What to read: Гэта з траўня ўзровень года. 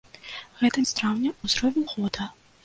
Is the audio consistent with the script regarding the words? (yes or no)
yes